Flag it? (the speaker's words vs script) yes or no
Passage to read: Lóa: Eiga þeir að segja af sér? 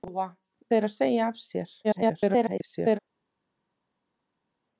yes